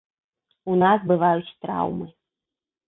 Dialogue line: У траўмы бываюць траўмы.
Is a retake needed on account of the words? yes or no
yes